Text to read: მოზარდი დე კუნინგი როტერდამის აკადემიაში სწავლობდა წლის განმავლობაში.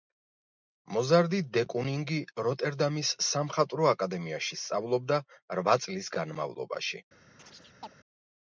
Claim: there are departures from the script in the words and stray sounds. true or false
true